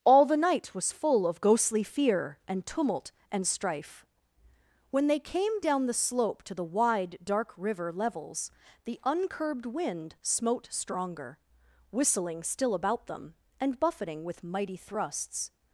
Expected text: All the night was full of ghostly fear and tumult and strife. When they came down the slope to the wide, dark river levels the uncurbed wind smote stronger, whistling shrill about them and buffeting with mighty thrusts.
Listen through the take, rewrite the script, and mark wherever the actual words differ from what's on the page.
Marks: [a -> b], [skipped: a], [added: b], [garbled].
All the night was full of ghostly fear and tumult and strife. When they came down the slope to the wide, dark river levels the uncurbed wind smote stronger, whistling [shrill -> still] about them and buffeting with mighty thrusts.